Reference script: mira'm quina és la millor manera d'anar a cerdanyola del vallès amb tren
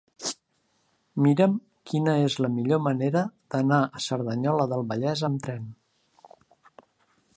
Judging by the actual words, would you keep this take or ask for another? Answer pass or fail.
pass